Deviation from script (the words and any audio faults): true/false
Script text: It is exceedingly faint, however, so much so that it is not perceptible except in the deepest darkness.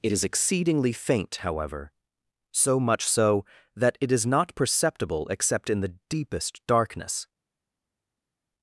false